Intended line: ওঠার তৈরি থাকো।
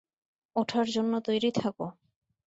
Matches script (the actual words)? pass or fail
fail